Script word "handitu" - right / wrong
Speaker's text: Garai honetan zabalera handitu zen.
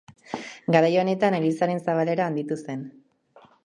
right